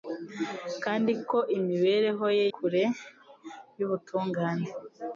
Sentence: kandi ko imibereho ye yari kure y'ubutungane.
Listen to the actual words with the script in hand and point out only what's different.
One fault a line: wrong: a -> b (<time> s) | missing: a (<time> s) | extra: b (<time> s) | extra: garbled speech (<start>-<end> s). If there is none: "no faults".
missing: yari (2.5 s)